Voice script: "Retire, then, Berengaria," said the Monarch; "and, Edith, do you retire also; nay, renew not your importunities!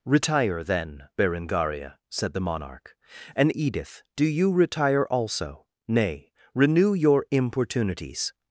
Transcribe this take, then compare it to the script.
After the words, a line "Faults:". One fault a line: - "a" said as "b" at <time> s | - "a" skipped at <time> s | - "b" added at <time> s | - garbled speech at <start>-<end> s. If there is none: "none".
"Retire, then, Berengaria," said the Monarch; "and, Edith, do you retire also; nay, renew your importunities!
Faults:
- "not" skipped at 6.9 s